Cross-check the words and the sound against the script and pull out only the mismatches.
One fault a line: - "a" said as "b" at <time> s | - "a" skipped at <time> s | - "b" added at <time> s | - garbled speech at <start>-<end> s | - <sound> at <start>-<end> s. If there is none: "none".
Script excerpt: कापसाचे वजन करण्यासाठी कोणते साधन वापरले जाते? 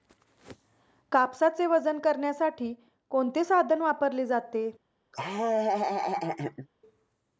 - laugh at 5.1-6.7 s